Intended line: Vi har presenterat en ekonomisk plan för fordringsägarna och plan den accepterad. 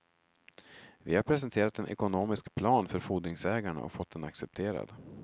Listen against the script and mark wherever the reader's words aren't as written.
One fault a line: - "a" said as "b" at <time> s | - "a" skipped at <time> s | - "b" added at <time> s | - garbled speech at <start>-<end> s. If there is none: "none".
- "plan" said as "fått" at 3.9 s